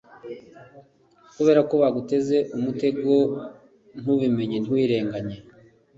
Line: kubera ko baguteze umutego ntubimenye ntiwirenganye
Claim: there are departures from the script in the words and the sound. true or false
false